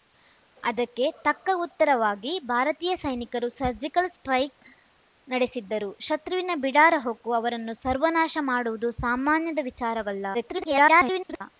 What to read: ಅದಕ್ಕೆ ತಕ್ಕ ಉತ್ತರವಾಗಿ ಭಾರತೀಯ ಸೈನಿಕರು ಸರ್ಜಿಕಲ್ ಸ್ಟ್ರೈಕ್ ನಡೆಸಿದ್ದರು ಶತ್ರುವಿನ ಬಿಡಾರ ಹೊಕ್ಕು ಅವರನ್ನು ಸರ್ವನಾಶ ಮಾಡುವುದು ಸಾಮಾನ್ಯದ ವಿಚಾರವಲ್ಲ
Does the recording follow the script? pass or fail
fail